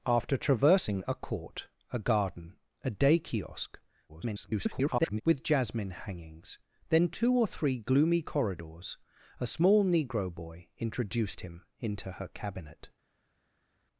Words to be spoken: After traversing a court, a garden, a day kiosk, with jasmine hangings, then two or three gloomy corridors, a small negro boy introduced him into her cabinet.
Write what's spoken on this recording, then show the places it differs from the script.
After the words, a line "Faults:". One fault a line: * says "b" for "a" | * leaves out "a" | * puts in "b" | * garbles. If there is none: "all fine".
After traversing a court, a garden, a day kiosk, [garbled] with jasmine hangings, then two or three gloomy corridors, a small negro boy introduced him into her cabinet.
Faults:
* garbles